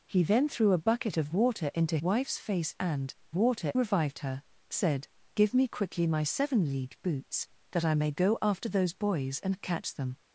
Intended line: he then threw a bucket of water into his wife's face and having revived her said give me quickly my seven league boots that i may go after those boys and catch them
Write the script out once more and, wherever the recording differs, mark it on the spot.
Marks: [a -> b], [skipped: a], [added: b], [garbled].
he then threw a bucket of water into [skipped: his] wife's face and [having -> water] revived her said give me quickly my seven league boots that i may go after those boys and catch them